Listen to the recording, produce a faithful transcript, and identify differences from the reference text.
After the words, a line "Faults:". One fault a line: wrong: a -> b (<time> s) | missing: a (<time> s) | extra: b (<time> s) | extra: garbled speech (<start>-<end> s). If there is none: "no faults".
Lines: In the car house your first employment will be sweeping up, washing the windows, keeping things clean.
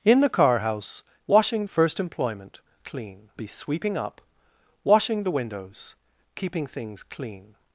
In the car house washing first employment clean be sweeping up, washing the windows, keeping things clean.
Faults:
wrong: your -> washing (1.3 s)
wrong: will -> clean (2.8 s)